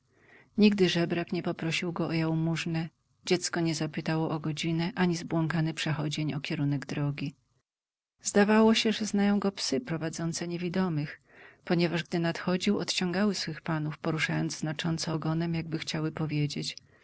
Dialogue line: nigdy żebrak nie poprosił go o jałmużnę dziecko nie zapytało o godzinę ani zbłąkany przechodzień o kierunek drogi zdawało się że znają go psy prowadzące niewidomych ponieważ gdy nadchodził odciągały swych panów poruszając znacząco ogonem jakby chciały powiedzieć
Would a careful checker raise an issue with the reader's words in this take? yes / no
no